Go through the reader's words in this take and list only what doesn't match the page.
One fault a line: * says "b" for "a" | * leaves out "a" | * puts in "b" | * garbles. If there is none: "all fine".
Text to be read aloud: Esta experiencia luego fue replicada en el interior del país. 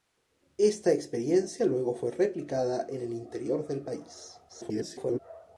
* garbles